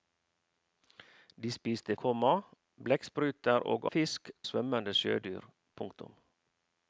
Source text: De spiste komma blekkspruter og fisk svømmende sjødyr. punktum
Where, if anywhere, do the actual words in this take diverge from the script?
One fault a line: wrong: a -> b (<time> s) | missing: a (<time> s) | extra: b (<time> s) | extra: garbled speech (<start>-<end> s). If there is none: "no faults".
no faults